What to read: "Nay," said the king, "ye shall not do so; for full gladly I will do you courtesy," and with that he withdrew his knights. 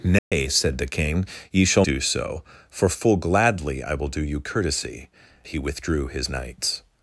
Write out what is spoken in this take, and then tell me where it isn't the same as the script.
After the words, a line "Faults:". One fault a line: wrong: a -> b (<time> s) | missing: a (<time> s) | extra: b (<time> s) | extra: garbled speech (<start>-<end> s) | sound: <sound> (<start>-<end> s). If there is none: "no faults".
"Nay," said the king, "ye shall do so; for full gladly I will do you courtesy," he withdrew his knights.
Faults:
sound: dropout (0.2-0.3 s)
missing: not (1.9 s)
missing: and with that (5.1 s)